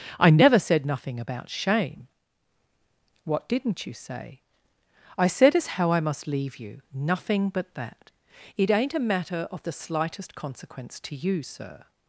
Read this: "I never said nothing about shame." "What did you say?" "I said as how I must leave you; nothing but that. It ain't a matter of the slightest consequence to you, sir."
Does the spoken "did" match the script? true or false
false